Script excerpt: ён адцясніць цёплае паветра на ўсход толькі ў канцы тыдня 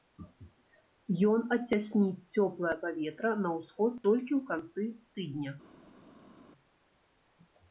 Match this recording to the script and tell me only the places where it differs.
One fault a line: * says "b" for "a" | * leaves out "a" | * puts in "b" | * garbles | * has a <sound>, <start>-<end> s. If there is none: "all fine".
all fine